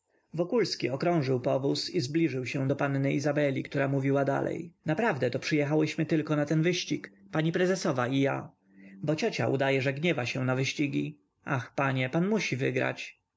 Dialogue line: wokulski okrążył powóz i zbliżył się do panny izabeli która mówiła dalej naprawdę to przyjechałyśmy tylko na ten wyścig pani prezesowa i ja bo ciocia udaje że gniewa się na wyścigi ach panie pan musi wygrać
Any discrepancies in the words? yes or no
no